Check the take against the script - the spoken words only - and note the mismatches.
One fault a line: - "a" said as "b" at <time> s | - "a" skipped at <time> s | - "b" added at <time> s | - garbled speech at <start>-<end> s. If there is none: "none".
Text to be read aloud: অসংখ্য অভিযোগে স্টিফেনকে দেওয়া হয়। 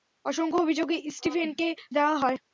none